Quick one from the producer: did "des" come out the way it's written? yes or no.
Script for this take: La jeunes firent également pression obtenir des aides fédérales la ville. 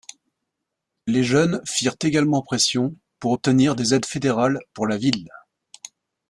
yes